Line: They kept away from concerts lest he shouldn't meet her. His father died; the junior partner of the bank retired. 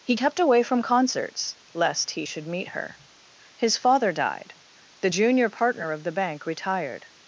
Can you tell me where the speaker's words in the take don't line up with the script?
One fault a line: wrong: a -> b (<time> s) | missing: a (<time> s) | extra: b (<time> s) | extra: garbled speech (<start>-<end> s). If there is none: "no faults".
wrong: They -> He (0.0 s)
wrong: shouldn't -> should (2.2 s)